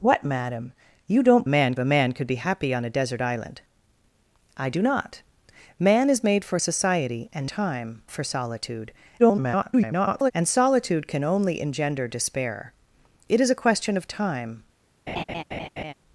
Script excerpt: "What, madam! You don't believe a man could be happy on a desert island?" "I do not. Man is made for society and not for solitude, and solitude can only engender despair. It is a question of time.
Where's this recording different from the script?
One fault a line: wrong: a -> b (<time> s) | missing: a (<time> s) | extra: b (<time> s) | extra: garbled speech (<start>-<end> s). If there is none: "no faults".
wrong: believe -> man (1.5 s)
wrong: not -> time (7.4 s)
extra: garbled speech (9.2-10.3 s)